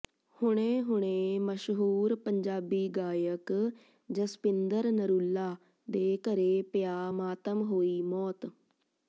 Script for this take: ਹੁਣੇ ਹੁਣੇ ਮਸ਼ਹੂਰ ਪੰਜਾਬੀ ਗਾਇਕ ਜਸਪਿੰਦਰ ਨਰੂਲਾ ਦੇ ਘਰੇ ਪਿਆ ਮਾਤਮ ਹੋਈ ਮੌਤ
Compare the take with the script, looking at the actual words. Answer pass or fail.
pass